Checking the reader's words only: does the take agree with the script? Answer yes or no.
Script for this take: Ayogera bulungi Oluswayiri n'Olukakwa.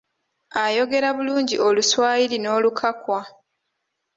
yes